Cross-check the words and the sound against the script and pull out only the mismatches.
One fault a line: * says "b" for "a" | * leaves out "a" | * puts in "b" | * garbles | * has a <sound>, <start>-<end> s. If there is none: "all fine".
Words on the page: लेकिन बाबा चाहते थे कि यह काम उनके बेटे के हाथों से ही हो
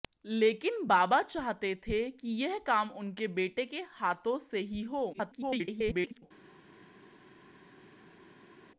* garbles